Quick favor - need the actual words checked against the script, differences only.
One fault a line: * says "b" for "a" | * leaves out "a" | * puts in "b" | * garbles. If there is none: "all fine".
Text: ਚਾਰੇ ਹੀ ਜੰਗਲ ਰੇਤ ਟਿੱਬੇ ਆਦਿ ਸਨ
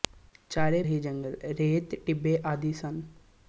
all fine